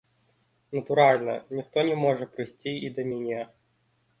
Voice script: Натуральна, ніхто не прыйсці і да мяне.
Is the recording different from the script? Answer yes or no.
yes